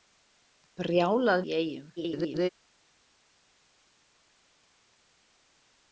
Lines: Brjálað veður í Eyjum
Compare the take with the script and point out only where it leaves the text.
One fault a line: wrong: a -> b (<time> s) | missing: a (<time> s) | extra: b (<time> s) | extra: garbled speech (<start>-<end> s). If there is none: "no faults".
missing: veður (1.4 s)
extra: garbled speech (2.0-2.5 s)